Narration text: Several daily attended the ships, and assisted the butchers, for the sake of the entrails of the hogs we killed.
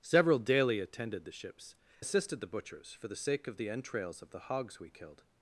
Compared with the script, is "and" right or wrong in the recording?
wrong